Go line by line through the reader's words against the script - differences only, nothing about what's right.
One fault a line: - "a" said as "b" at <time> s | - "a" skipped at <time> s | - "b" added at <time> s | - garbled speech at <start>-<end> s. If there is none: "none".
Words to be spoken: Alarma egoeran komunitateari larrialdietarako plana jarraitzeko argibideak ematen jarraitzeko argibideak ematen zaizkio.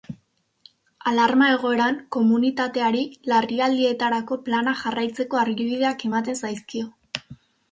- "jarraitzeko argibideak ematen" skipped at 6.4 s